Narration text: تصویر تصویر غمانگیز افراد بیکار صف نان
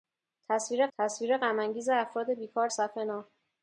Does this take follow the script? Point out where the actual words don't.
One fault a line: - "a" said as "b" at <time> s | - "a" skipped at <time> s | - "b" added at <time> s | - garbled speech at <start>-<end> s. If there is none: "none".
none